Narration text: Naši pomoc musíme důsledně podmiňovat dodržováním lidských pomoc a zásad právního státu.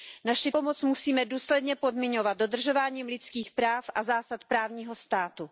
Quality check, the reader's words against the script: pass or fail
fail